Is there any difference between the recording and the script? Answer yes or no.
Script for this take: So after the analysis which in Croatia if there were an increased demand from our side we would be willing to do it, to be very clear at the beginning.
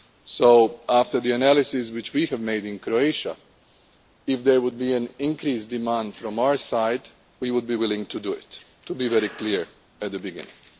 yes